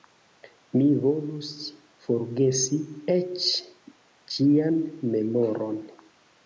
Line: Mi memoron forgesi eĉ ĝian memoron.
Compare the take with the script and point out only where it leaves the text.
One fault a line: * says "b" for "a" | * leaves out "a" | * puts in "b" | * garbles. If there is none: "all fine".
* says "volus" for "memoron"